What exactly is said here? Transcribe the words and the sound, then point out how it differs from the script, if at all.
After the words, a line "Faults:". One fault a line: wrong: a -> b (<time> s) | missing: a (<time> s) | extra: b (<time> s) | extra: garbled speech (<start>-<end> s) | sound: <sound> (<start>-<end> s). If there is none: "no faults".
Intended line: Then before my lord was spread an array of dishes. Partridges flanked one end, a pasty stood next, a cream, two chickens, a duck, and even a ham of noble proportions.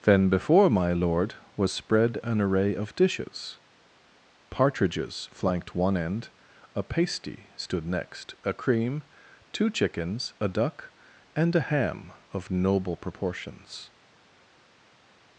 Then before my lord was spread an array of dishes. Partridges flanked one end, a pasty stood next, a cream, two chickens, a duck, and a ham of noble proportions.
Faults:
missing: even (11.6 s)